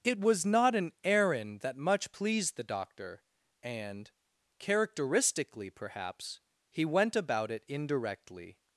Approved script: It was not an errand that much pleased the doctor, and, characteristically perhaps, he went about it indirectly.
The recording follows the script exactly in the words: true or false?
true